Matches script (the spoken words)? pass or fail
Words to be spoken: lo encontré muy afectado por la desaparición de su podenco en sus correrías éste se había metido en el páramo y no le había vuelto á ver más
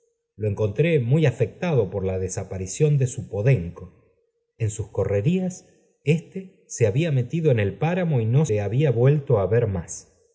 pass